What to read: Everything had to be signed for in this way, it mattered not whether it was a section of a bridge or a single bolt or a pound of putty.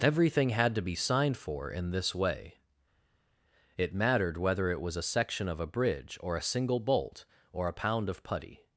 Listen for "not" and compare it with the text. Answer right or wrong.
wrong